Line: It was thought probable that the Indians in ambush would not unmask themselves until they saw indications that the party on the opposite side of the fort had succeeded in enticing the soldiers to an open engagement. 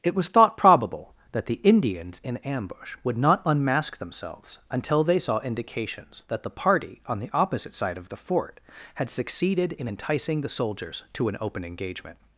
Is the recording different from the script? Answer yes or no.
no